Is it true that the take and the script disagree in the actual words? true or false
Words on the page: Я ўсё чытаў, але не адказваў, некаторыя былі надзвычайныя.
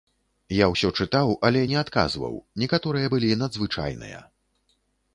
false